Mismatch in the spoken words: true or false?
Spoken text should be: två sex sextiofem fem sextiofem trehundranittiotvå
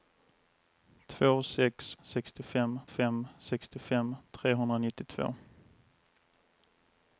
false